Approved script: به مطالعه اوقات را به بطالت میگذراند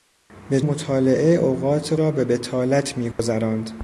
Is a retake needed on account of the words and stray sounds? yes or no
yes